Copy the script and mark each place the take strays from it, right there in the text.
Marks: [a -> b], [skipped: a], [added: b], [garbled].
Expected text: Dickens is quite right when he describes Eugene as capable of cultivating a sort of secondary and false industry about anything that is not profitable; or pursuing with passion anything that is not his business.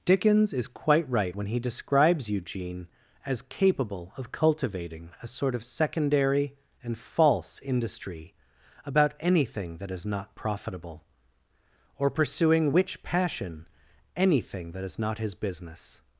Dickens is quite right when he describes Eugene as capable of cultivating a sort of secondary and false industry about anything that is not profitable; or pursuing [with -> which] passion anything that is not his business.